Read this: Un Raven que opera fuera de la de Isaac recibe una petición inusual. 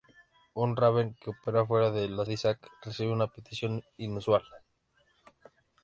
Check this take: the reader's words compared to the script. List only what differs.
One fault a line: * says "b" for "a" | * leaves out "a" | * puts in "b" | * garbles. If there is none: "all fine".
all fine